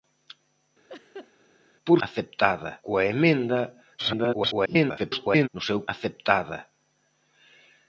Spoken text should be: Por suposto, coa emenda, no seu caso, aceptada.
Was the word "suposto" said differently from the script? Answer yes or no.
yes